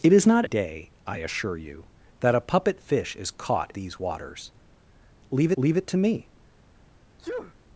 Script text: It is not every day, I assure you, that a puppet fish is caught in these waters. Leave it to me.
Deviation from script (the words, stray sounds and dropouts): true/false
true